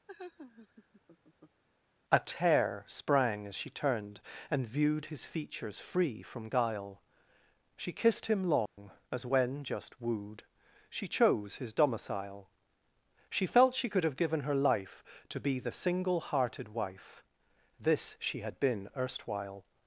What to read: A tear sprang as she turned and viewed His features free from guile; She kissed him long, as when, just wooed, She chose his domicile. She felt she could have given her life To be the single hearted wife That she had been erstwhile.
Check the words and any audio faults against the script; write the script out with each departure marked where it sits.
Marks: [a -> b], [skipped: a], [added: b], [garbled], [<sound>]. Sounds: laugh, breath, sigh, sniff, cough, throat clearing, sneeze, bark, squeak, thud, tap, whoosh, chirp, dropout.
[laugh] A tear sprang as she turned and viewed His features free from guile; She kissed him long, [dropout] as when, just wooed, She chose his domicile. She felt she could have given her life To be the single hearted wife [That -> This] she had been erstwhile.